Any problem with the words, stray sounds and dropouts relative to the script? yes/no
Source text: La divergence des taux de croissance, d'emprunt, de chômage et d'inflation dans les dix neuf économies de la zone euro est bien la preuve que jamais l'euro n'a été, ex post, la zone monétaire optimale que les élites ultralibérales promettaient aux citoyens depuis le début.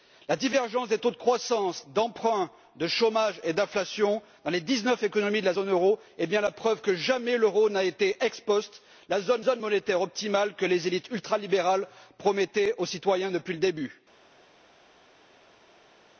yes